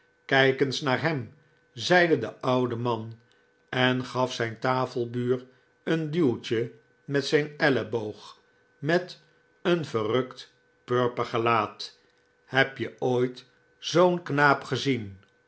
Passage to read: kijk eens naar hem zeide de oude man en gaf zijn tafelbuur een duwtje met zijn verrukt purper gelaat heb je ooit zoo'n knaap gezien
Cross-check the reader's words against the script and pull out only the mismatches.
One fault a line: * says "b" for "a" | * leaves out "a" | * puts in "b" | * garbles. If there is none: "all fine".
* puts in "elleboog met een"